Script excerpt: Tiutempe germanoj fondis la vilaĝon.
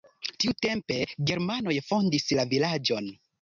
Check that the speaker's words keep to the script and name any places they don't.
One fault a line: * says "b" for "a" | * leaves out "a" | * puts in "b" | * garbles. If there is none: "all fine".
all fine